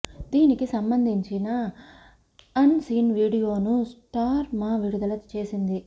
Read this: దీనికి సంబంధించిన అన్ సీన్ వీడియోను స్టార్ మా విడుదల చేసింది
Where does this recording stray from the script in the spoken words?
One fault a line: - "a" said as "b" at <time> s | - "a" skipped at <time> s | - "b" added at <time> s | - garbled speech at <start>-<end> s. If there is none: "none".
none